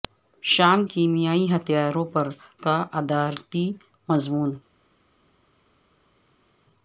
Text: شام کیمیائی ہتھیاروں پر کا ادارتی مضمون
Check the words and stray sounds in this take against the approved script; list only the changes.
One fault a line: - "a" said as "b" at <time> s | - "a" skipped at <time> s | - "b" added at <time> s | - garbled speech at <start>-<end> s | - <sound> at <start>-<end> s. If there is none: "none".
none